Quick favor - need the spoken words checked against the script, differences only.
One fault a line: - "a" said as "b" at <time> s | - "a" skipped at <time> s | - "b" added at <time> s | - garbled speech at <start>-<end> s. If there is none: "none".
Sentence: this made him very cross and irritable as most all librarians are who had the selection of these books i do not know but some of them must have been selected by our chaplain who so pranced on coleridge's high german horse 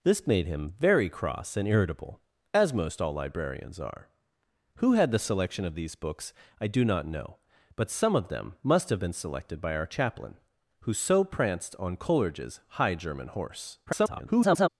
- garbled speech at 13.9-14.7 s